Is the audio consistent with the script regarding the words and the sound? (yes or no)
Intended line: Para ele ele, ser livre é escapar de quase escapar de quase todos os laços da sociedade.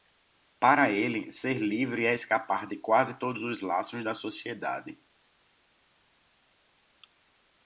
no